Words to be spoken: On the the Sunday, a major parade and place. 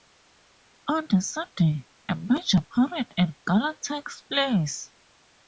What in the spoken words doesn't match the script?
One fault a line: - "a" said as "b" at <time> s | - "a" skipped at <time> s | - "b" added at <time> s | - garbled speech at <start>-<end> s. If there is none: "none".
- "the" skipped at 1.2 s
- "gala takes" added at 3.5 s